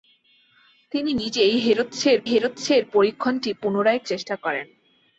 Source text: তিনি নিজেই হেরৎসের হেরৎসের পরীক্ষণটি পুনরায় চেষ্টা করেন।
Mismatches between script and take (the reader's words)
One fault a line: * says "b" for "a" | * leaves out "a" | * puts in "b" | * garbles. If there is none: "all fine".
all fine